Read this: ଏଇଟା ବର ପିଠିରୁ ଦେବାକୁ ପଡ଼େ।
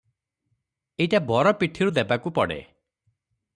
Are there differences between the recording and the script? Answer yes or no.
no